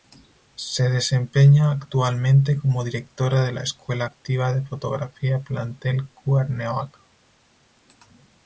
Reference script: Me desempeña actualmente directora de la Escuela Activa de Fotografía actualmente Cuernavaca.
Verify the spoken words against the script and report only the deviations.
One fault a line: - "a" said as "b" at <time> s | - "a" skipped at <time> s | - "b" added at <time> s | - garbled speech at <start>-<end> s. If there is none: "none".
- "Me" said as "Se" at 0.6 s
- "como" added at 2.6 s
- "actualmente" said as "plantel" at 5.4 s